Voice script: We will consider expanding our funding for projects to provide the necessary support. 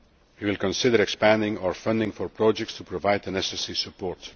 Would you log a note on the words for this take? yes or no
no